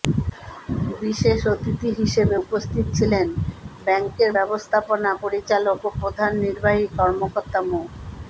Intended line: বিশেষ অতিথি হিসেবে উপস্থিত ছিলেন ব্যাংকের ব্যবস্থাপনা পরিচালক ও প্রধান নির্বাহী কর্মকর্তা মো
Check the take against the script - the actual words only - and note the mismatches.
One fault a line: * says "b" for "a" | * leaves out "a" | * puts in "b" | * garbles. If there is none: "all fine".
all fine